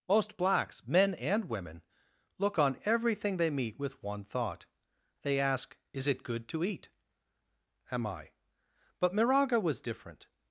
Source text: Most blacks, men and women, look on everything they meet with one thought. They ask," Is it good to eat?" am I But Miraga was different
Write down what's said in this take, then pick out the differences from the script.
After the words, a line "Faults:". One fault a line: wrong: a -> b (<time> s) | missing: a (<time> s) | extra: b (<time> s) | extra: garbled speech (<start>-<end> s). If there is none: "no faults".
Most blacks, men and women, look on everything they meet with one thought. They ask," Is it good to eat?" am I But Miraga was different
Faults:
no faults